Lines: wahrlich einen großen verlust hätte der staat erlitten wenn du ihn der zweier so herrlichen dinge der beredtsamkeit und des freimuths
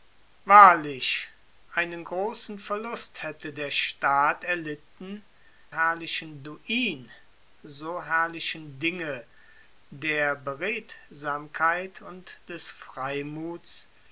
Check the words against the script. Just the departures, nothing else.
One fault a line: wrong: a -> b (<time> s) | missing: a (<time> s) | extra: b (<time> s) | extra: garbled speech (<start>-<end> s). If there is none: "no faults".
wrong: wenn -> herrlichen (5.7 s)
missing: der zweier (7.1 s)